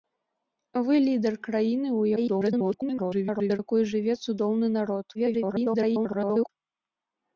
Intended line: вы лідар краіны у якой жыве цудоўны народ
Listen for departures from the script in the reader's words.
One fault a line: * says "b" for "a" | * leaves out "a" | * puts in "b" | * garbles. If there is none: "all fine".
* garbles
* garbles